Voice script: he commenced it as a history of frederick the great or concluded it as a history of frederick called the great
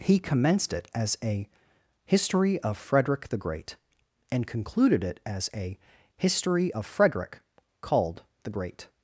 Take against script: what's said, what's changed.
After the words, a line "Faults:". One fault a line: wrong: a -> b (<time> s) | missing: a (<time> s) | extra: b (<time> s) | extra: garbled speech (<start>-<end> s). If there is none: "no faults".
he commenced it as a history of frederick the great and concluded it as a history of frederick called the great
Faults:
wrong: or -> and (4.3 s)